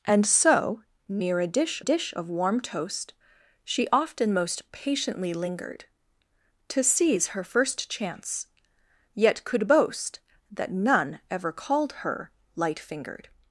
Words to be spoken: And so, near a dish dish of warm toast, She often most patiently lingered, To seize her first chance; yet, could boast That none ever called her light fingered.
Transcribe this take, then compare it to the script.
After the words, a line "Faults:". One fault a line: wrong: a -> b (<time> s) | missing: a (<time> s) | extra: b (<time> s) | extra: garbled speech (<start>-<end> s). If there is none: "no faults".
And so, near a dish dish of warm toast, She often most patiently lingered, To seize her first chance; yet, could boast That none ever called her light fingered.
Faults:
no faults